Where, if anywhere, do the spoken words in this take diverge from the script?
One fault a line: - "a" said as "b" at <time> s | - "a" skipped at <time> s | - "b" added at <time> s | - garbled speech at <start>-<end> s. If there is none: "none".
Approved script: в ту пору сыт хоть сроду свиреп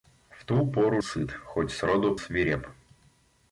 none